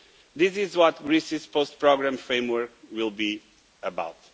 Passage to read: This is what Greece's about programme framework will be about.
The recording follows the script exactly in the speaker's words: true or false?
false